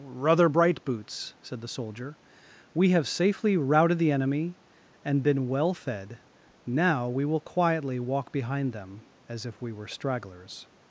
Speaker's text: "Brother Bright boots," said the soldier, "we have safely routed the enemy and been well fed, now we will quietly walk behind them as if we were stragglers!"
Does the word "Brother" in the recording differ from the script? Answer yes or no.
yes